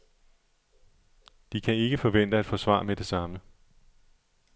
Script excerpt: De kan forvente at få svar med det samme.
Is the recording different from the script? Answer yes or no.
yes